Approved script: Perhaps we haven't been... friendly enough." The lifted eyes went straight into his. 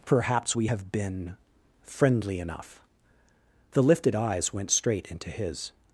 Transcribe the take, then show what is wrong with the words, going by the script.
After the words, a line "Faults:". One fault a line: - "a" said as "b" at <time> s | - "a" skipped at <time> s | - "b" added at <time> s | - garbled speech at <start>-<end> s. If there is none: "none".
Perhaps we have been... friendly enough." The lifted eyes went straight into his.
Faults:
- "haven't" said as "have" at 0.6 s